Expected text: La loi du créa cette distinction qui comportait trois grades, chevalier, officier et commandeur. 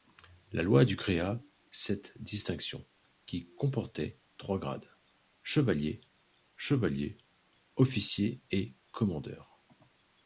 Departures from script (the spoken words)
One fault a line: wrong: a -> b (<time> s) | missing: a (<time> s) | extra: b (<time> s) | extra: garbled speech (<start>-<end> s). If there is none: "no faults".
extra: chevalier (6.6 s)